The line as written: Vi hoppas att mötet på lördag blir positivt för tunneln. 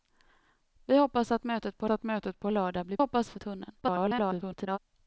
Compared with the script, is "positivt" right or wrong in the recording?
wrong